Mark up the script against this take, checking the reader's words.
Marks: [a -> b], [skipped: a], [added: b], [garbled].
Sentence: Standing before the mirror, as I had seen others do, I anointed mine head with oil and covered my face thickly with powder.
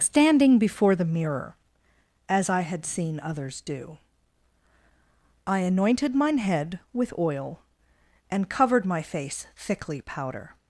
Standing before the mirror, as I had seen others do, I anointed mine head with oil and covered my face thickly [skipped: with] powder.